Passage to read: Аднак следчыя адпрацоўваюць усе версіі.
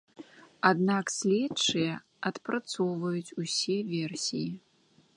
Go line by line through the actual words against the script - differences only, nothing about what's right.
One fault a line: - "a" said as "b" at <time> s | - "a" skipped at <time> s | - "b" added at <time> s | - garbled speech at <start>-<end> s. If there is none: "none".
none